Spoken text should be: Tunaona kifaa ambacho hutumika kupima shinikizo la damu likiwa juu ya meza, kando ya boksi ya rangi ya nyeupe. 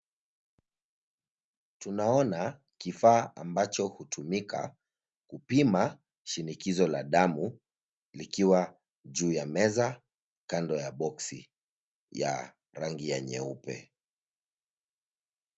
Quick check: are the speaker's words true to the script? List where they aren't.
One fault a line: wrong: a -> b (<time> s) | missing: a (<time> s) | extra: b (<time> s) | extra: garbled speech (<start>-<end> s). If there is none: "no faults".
no faults